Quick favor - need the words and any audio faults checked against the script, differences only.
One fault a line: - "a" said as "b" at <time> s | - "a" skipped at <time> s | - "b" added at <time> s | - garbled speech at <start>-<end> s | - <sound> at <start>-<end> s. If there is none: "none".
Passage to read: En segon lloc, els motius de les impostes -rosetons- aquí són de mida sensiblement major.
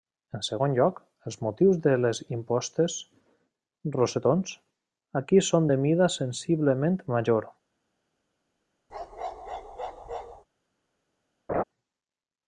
- bark at 8.9-10.4 s
- laugh at 11.5-11.6 s